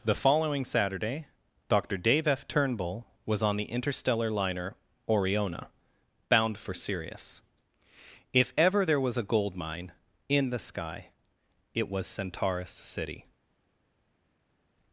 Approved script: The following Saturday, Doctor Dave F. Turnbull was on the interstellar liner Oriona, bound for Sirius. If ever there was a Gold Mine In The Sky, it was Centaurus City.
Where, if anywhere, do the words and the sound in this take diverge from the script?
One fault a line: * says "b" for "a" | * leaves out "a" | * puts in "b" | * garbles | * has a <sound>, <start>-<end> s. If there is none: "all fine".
all fine